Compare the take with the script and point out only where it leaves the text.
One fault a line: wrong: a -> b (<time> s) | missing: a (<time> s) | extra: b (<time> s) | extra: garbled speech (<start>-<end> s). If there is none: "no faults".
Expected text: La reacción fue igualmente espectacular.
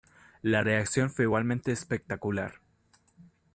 no faults